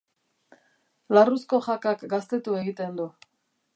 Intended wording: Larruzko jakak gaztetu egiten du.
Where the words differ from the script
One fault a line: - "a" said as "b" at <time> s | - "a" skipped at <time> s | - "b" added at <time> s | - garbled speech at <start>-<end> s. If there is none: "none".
none